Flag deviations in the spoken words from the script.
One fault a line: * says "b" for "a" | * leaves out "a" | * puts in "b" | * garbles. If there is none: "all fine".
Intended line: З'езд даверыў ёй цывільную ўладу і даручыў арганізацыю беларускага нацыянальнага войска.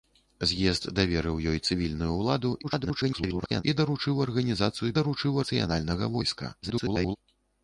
* garbles
* says "даручыў" for "беларускага"
* garbles